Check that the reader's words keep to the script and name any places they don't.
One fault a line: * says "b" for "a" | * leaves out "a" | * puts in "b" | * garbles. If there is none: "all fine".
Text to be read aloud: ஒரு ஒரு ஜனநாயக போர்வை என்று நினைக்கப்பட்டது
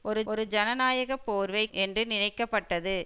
all fine